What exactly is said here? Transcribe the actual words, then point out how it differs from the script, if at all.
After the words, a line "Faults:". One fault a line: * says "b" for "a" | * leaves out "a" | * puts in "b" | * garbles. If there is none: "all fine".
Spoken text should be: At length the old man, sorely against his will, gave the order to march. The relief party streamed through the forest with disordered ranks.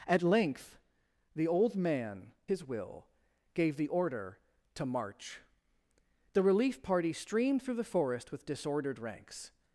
At length the old man, his will, gave the order to march. The relief party streamed through the forest with disordered ranks.
Faults:
* leaves out "sorely against"